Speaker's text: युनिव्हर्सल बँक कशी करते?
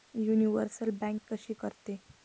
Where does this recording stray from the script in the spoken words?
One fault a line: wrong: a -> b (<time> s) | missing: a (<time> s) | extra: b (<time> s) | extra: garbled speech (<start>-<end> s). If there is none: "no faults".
no faults